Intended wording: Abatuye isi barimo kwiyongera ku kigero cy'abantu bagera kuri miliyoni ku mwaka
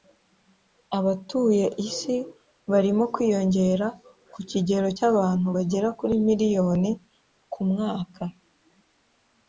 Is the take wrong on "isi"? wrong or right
right